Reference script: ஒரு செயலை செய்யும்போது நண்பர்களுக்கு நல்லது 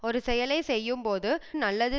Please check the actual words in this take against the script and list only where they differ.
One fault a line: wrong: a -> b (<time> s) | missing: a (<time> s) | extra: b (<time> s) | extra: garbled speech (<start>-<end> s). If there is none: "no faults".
missing: நண்பர்களுக்கு (1.3 s)